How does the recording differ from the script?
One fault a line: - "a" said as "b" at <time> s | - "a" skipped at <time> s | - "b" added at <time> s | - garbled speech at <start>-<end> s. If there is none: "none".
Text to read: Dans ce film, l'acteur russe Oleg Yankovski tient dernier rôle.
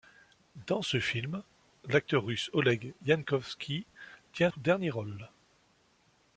none